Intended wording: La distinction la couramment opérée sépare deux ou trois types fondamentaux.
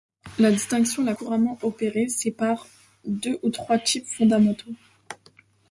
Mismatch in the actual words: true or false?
false